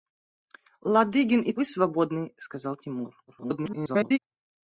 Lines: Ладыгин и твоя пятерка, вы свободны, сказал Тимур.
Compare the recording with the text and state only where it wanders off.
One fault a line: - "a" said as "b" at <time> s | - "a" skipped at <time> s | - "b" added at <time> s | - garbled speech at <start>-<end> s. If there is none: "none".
- "твоя пятерка" skipped at 1.5 s
- garbled speech at 3.3-4.2 s